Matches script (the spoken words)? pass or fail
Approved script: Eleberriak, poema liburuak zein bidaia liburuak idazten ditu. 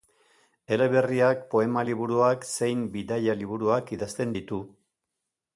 pass